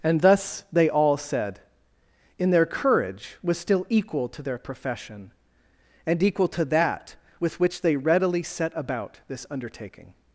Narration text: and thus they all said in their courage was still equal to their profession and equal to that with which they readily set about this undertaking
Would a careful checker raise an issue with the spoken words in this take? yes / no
no